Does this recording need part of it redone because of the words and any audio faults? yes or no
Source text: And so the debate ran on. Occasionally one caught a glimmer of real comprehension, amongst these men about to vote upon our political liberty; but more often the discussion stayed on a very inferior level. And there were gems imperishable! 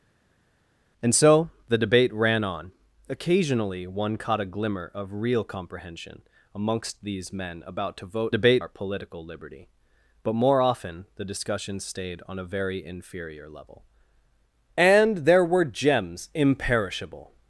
yes